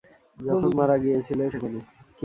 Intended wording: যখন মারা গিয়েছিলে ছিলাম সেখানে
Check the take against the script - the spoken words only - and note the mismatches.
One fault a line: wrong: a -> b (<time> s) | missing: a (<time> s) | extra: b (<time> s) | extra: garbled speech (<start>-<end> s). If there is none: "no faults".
missing: ছিলাম (1.4 s)